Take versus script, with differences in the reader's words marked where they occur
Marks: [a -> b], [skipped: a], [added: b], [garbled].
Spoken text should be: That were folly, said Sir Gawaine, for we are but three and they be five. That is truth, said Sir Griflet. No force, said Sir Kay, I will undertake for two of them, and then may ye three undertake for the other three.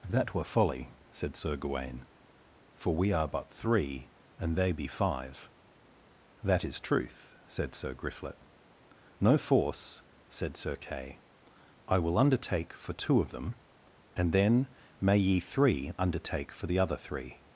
That were folly, said Sir Gawaine, for we are but three and they be five. That is truth, said Sir Griflet. No force, said Sir Kay, I will undertake for two of them, and then may ye three undertake for the other three.